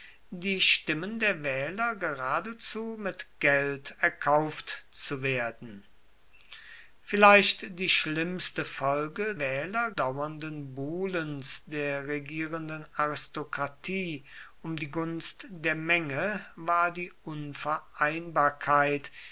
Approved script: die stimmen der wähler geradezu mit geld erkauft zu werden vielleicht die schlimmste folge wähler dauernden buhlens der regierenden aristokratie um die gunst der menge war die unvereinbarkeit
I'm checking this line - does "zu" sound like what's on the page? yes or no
yes